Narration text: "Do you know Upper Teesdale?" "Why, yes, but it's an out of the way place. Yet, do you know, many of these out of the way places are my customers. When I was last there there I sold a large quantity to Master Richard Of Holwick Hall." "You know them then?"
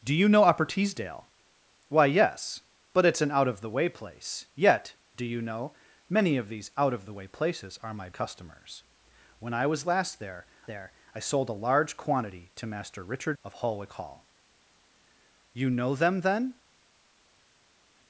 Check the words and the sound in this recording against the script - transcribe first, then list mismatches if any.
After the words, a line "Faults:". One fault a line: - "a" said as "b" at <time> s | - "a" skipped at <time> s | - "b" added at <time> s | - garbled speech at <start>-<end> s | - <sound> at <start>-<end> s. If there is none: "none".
"Do you know Upper Teesdale?" "Why, yes, but it's an out of the way place. Yet, do you know, many of these out of the way places are my customers. When I was last there there I sold a large quantity to Master Richard Of Holwick Hall." "You know them then?"
Faults:
none